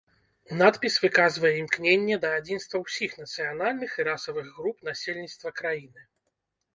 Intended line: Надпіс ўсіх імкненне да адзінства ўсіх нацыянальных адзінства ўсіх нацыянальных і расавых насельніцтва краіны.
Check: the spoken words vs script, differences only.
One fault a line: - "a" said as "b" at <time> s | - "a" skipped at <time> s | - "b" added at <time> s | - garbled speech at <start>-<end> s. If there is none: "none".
- "ўсіх" said as "выказвае" at 1.0 s
- "адзінства ўсіх нацыянальных" skipped at 4.0 s
- "груп" added at 4.6 s